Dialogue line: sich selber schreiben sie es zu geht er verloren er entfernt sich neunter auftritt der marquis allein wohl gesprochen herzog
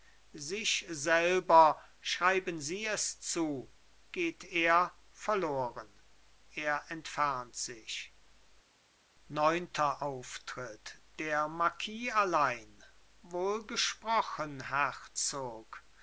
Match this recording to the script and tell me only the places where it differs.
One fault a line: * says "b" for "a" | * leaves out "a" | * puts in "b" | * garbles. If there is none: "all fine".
all fine